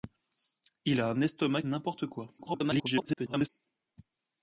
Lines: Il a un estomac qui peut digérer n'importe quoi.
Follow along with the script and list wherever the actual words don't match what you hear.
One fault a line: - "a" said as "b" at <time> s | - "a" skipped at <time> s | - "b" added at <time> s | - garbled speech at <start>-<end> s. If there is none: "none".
- "qui peut digérer" skipped at 1.6 s
- garbled speech at 2.4-3.5 s